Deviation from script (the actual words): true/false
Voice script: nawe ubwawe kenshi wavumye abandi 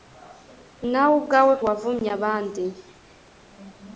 true